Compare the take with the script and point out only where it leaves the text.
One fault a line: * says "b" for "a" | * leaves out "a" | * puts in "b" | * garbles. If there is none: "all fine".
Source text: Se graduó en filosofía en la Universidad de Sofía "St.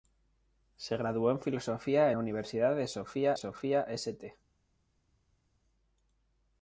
* leaves out "en"
* puts in "Sofía"